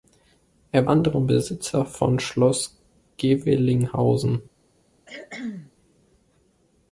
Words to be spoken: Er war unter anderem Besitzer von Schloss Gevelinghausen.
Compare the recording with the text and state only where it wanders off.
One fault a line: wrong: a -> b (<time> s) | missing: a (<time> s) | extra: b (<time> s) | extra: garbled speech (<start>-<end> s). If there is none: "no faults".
missing: war unter (0.9 s)